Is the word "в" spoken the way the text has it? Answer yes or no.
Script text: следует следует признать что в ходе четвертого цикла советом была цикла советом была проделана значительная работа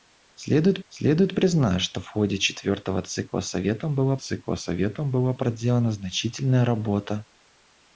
yes